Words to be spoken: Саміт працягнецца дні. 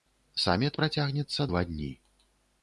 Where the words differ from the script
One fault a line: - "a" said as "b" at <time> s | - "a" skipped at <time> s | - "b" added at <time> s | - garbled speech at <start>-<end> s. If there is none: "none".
- "два" added at 1.5 s